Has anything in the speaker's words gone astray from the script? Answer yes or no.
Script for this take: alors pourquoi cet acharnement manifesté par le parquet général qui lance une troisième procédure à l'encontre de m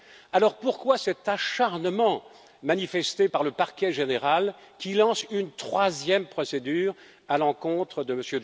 no